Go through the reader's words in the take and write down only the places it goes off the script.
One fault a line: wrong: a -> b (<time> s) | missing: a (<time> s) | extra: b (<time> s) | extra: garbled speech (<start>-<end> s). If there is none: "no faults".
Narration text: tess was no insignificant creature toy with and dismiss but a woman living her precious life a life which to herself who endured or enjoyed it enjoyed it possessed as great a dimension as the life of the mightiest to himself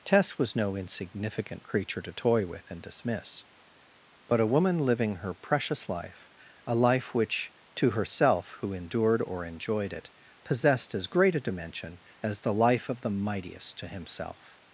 extra: to (2.0 s)
missing: enjoyed it (10.1 s)